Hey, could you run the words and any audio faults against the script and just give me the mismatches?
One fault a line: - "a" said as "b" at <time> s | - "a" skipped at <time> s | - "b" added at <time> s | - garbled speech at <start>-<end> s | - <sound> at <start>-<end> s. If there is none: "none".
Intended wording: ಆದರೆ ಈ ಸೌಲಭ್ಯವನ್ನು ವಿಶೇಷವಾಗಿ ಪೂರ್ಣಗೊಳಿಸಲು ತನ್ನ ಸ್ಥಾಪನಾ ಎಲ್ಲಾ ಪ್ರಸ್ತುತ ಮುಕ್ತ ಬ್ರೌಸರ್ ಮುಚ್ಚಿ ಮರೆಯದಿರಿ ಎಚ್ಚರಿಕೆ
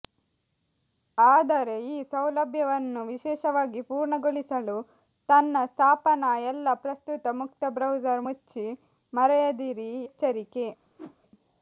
- whoosh at 11.0-11.2 s